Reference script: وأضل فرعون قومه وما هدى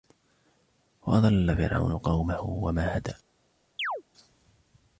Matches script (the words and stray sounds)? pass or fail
fail